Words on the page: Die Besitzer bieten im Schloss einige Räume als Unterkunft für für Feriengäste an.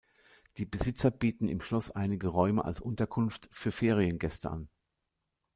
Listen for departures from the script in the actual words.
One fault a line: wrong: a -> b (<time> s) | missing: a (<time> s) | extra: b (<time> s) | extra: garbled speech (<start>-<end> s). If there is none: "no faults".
missing: für (3.7 s)